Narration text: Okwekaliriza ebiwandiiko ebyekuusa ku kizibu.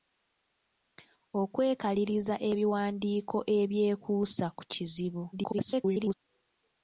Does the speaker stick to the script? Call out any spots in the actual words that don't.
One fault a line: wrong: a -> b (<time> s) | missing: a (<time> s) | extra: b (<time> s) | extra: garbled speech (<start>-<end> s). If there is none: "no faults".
extra: garbled speech (5.3-6.1 s)